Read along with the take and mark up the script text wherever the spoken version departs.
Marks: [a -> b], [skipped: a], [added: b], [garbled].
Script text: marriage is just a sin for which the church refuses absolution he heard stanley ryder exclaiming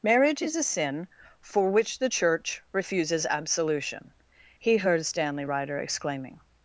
marriage is [skipped: just] a sin for which the church refuses absolution he heard stanley ryder exclaiming